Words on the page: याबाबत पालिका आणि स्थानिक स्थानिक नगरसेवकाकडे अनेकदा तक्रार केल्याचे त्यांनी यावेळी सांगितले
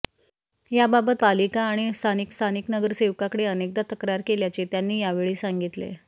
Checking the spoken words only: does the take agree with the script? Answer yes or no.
yes